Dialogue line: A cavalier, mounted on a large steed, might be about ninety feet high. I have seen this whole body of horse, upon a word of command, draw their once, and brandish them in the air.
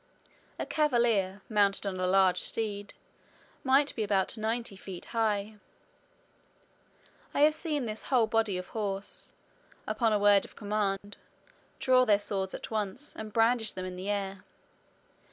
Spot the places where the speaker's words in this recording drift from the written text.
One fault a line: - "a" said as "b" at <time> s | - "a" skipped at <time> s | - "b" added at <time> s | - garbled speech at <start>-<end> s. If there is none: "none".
- "swords at" added at 12.2 s